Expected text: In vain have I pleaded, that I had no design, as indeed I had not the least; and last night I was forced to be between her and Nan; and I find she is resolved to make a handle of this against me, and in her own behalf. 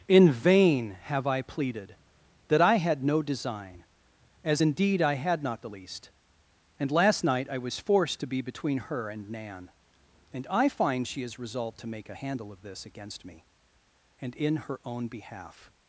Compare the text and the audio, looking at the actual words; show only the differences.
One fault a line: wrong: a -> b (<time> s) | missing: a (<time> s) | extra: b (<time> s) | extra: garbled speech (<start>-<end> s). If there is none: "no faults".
no faults